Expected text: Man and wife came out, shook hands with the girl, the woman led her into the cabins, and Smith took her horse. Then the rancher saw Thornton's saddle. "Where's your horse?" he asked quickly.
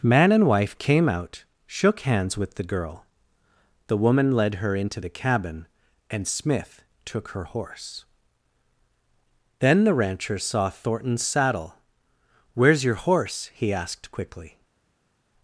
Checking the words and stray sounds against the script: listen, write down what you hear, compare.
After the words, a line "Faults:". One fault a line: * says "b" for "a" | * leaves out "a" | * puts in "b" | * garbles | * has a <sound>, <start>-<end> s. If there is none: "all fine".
Man and wife came out, shook hands with the girl, the woman led her into the cabin, and Smith took her horse. Then the rancher saw Thornton's saddle. "Where's your horse?" he asked quickly.
Faults:
* says "cabin" for "cabins"